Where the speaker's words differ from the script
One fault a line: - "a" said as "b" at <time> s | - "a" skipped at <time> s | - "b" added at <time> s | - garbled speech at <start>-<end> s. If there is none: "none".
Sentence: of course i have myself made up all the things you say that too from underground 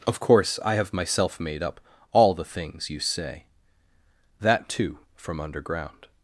none